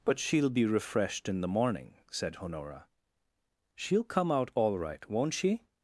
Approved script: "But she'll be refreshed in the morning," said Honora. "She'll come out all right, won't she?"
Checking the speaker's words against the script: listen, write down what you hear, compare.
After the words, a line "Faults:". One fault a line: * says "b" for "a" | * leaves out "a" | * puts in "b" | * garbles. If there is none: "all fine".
"But she'll be refreshed in the morning," said Honora. "She'll come out all right, won't she?"
Faults:
all fine